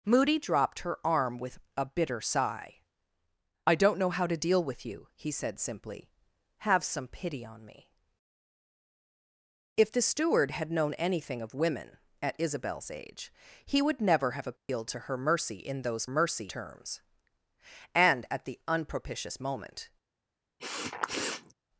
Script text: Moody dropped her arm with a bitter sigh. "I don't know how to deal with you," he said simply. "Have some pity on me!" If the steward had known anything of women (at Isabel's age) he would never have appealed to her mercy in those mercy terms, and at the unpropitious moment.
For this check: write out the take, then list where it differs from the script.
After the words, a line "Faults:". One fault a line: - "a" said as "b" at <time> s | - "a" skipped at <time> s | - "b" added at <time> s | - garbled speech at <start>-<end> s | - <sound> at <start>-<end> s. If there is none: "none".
Moody dropped her arm with a bitter sigh. "I don't know how to deal with you," he said simply. "Have some pity on me!" If the steward had known anything of women (at Isabel's age) he would never have appealed to her mercy in those mercy terms, and at the unpropitious moment.
Faults:
- dropout at 14.6-14.7 s
- sniff at 20.6-21.5 s